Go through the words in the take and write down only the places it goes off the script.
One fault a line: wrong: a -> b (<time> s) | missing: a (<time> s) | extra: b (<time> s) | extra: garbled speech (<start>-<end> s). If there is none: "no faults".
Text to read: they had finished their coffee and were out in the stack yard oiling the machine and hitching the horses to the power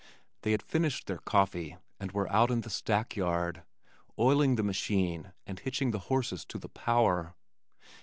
no faults